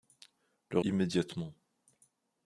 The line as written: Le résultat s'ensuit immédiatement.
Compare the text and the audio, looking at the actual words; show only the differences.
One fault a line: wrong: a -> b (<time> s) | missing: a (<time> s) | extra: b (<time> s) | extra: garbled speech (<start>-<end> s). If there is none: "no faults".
missing: résultat s'ensuit (0.8 s)